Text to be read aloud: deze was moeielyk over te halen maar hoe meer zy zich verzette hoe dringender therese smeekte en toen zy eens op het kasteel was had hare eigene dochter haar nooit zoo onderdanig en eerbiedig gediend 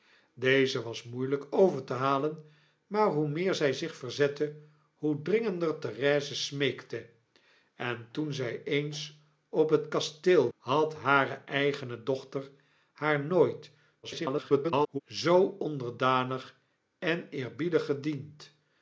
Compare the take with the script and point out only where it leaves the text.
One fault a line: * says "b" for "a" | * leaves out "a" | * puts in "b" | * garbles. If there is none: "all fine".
* leaves out "was"
* garbles